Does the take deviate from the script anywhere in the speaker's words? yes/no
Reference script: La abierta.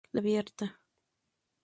no